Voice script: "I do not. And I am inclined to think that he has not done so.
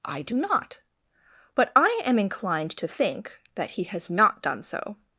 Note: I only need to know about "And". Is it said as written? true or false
false